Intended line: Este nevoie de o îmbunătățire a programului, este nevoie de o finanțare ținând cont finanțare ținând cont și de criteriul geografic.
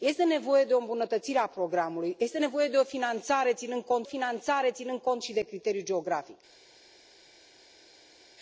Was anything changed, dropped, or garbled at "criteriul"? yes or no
no